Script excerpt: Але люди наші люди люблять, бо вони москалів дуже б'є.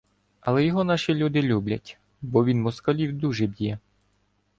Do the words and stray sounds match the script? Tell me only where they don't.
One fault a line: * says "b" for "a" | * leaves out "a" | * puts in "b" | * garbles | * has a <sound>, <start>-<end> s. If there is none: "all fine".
* says "його" for "люди"
* says "він" for "вони"